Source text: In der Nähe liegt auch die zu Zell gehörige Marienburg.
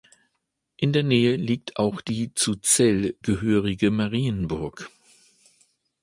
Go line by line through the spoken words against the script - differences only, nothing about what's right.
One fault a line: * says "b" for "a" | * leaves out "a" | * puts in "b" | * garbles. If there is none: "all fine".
all fine